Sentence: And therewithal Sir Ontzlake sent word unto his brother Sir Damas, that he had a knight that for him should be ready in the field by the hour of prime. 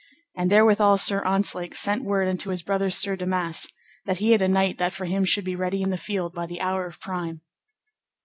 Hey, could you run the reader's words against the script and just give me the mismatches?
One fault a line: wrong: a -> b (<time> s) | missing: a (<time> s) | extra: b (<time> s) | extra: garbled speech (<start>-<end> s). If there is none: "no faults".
no faults